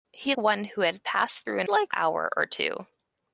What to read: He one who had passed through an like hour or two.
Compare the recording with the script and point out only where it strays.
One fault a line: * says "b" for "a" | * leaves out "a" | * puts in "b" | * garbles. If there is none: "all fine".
all fine